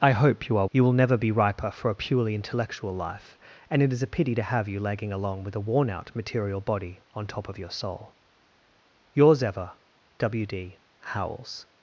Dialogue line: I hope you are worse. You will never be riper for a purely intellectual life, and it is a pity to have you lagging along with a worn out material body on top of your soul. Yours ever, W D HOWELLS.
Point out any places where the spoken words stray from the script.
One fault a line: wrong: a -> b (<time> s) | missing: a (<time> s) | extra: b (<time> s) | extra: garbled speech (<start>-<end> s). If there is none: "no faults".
missing: worse (0.7 s)